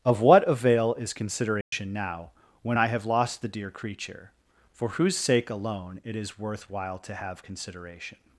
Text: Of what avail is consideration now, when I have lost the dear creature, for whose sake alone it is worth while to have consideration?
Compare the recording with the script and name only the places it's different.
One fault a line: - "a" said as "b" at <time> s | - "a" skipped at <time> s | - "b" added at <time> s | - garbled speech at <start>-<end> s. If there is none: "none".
none